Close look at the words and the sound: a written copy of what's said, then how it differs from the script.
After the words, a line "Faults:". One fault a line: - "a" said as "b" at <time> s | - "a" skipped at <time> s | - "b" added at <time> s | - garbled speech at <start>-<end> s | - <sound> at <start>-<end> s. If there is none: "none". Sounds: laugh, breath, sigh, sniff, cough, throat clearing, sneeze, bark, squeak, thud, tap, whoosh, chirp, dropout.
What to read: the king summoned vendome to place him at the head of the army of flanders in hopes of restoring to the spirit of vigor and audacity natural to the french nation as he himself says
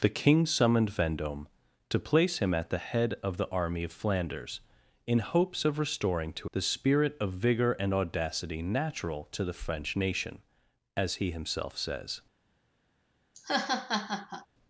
the king summoned vendome to place him at the head of the army of flanders in hopes of restoring to the spirit of vigor and audacity natural to the french nation as he himself says
Faults:
- laugh at 13.3-14.5 s